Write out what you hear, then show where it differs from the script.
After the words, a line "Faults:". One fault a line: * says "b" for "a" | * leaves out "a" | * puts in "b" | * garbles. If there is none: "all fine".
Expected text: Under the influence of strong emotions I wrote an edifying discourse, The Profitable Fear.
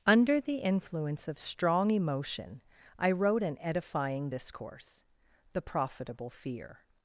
Under the influence of strong emotion I wrote an edifying discourse, The Profitable Fear.
Faults:
* says "emotion" for "emotions"